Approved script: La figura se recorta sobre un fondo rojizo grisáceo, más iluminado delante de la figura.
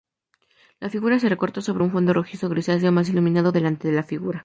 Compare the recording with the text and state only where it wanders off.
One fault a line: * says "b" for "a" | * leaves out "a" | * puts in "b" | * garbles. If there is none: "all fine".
all fine